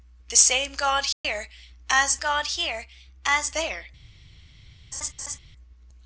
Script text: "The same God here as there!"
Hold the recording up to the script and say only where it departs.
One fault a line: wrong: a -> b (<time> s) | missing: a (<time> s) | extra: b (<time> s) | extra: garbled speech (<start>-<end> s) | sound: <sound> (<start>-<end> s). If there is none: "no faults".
sound: dropout (1.1-1.2 s)
extra: God here as (2.2 s)
sound: laugh (4.9-5.4 s)